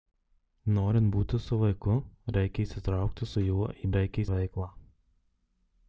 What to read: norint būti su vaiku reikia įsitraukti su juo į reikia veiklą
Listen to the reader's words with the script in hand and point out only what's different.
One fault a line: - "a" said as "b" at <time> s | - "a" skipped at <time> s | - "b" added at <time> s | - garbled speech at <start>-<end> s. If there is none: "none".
none